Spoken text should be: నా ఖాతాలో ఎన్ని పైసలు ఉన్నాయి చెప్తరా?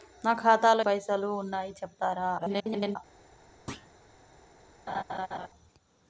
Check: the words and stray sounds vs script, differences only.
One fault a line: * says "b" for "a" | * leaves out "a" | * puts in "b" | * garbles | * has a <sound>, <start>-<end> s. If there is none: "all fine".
* leaves out "ఎన్ని"
* garbles
* has a thud, 3.7-3.9 s
* has a laugh, 4.9-5.5 s